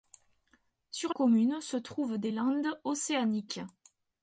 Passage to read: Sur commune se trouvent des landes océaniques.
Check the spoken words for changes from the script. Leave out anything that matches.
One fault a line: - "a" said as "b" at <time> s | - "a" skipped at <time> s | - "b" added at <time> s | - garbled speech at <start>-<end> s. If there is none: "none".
none